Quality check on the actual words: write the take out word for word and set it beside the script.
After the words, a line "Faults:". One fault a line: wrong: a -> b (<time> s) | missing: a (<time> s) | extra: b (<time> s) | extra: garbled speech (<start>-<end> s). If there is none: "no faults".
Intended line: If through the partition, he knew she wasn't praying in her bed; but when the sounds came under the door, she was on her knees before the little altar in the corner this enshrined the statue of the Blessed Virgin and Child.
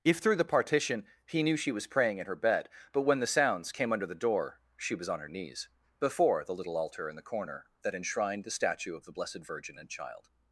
If through the partition, he knew she was praying in her bed; but when the sounds came under the door, she was on her knees before the little altar in the corner that enshrined the statue of the Blessed Virgin and Child.
Faults:
wrong: wasn't -> was (1.7 s)
wrong: this -> that (7.8 s)